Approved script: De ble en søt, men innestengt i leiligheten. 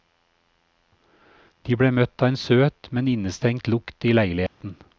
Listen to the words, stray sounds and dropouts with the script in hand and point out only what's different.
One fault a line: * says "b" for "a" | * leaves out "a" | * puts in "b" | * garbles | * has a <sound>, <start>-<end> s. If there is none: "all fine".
* puts in "møtt av"
* puts in "lukt"
* has a dropout, 4.5-4.6 s